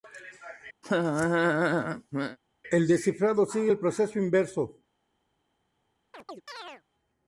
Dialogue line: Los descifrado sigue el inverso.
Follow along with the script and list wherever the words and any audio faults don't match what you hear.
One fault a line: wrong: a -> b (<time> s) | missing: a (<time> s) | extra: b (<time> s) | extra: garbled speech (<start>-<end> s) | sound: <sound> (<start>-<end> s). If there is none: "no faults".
sound: laugh (0.8-2.4 s)
wrong: Los -> El (2.7 s)
extra: proceso (3.8 s)
sound: chirp (6.1-6.8 s)